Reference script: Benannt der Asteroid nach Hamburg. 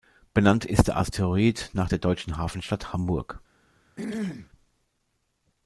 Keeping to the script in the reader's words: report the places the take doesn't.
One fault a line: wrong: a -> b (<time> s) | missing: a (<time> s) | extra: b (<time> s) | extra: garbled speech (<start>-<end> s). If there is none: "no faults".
extra: ist (0.7 s)
extra: der deutschen Hafenstadt (1.9 s)